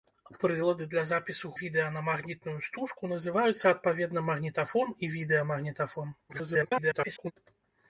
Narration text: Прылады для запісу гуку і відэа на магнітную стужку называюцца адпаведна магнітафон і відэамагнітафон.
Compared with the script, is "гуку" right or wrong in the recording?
wrong